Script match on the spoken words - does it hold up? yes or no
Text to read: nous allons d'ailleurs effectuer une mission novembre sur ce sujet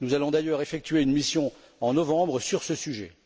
no